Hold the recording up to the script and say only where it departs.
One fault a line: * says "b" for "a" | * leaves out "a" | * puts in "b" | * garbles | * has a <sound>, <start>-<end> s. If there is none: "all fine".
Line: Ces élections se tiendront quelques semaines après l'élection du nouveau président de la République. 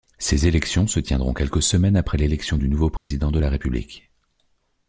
* has a dropout, 3.0-3.1 s